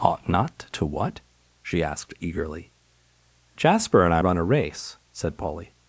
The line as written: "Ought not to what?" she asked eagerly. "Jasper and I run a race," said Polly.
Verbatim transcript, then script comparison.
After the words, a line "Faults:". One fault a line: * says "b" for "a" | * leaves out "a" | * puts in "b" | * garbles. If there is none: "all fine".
"Ought not to what?" she asked eagerly. "Jasper and I run a race," said Polly.
Faults:
all fine